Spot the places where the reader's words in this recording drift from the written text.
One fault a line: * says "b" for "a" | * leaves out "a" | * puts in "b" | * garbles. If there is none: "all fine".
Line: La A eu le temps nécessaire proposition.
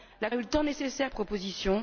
all fine